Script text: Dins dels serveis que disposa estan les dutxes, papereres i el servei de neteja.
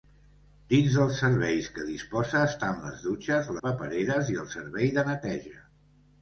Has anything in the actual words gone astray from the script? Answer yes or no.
no